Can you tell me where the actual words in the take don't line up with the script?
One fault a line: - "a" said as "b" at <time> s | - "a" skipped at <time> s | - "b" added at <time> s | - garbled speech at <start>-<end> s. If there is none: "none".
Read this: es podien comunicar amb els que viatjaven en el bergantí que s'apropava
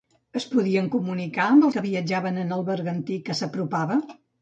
- "els" skipped at 1.7 s